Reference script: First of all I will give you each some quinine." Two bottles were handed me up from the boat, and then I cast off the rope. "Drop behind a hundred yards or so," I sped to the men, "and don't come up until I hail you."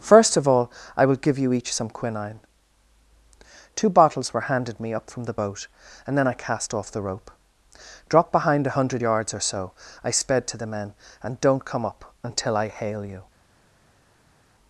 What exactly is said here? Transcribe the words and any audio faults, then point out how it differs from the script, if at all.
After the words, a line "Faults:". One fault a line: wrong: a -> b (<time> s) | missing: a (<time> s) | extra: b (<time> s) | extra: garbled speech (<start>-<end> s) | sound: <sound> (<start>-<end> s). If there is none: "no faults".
First of all I will give you each some quinine." Two bottles were handed me up from the boat, and then I cast off the rope. "Drop behind a hundred yards or so," I sped to the men, "and don't come up until I hail you."
Faults:
no faults